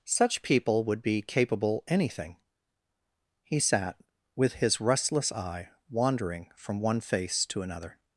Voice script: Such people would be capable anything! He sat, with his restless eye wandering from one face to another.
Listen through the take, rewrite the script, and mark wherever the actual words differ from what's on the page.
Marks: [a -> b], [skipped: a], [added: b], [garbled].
Such people would be capable anything! He sat, with his restless eye wandering from one face to another.